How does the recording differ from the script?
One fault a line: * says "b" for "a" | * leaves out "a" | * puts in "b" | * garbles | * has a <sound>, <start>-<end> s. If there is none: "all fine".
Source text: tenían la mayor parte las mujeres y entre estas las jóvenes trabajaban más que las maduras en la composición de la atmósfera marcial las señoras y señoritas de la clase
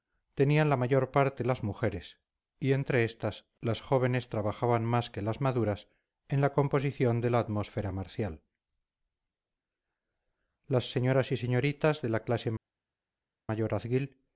all fine